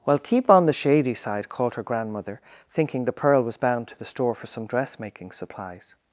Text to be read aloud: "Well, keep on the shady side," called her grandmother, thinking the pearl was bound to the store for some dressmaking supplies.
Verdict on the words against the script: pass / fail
pass